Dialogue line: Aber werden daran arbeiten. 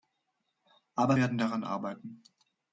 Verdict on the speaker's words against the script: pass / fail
pass